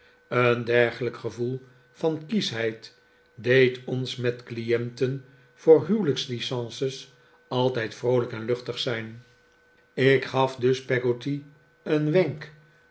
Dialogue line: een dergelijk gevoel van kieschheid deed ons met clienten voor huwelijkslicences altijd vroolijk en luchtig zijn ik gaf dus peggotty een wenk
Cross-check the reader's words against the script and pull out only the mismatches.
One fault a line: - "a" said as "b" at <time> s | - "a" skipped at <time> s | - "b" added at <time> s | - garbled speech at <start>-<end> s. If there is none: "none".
none